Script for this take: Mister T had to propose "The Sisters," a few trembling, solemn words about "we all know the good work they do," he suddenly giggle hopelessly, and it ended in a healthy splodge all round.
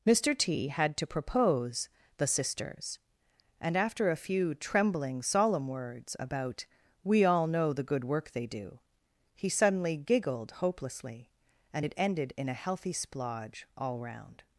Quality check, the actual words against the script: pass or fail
fail